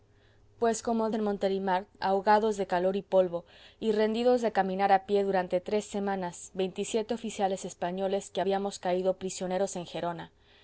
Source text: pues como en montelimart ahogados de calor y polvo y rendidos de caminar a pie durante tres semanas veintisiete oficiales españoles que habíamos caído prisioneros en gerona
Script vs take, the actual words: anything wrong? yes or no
no